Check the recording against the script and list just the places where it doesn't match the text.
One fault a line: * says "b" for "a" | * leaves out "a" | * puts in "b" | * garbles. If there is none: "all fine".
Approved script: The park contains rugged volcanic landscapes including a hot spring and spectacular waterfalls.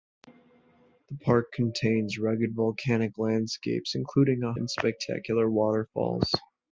* leaves out "hot spring"